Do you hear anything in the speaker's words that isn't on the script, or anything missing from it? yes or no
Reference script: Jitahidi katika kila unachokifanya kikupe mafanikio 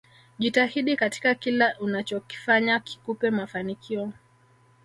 no